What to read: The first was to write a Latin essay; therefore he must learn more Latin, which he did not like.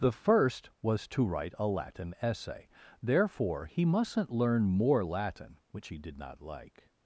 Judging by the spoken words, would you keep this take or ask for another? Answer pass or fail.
fail